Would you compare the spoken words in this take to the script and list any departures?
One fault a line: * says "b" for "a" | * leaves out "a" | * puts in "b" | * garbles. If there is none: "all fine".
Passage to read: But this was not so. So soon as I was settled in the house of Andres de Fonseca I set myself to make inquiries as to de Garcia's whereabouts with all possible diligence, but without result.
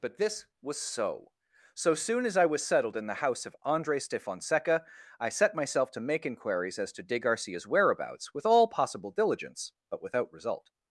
* leaves out "not"